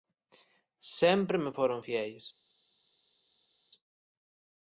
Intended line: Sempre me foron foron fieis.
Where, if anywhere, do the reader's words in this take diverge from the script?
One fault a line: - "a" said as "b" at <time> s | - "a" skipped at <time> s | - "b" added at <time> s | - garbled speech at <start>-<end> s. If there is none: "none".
- "foron" skipped at 1.8 s